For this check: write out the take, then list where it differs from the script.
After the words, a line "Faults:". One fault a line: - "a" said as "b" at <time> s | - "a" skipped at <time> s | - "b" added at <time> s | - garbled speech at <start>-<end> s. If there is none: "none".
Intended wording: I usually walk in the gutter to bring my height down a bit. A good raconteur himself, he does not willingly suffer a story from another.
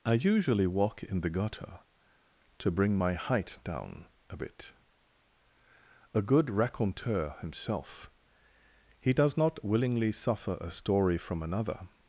I usually walk in the gutter to bring my height down a bit. A good raconteur himself, he does not willingly suffer a story from another.
Faults:
none